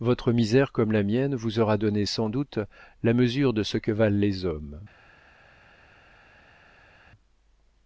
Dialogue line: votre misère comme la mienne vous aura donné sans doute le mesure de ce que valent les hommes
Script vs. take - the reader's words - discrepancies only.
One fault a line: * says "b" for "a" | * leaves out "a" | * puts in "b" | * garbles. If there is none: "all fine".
* says "la" for "le"